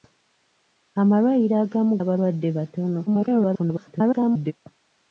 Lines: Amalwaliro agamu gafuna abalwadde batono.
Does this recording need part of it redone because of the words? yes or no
yes